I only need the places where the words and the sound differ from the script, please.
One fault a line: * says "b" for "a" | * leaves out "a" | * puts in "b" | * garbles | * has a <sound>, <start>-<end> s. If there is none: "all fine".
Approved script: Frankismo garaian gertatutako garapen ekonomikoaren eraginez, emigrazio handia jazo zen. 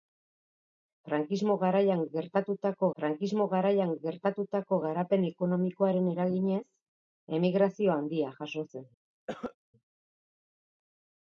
* puts in "frankismo garaian gertatutako"
* has a cough, 9.3-9.6 s